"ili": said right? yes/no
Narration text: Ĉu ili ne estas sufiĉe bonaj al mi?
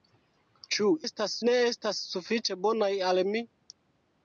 no